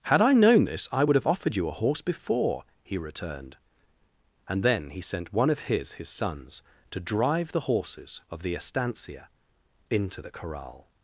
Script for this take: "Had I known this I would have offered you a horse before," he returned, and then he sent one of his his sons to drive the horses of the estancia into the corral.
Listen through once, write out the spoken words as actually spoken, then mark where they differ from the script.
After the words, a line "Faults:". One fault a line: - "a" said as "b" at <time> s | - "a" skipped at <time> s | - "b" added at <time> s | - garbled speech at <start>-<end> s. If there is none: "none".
"Had I known this I would have offered you a horse before," he returned, and then he sent one of his his sons to drive the horses of the estancia into the corral.
Faults:
none